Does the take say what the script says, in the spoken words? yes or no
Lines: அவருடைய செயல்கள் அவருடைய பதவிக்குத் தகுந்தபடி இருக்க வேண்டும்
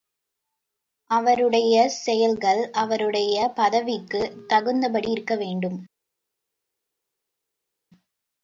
yes